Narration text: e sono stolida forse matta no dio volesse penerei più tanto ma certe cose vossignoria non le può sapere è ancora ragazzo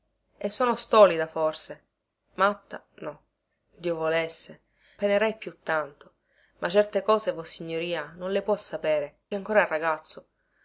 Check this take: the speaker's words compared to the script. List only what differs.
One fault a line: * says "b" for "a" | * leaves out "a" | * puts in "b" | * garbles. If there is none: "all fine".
all fine